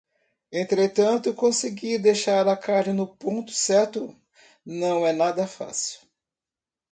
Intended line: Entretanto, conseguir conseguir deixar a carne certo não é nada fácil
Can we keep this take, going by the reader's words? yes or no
no